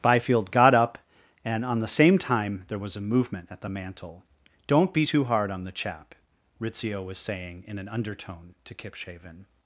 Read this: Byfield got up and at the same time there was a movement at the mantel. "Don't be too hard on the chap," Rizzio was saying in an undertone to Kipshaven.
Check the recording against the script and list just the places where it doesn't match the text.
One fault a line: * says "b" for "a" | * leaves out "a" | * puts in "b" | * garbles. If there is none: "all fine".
* says "on" for "at"